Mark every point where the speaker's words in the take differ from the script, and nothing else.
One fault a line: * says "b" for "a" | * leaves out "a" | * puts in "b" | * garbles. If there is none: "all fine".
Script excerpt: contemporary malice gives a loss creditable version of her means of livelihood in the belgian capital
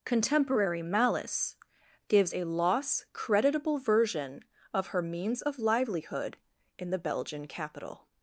all fine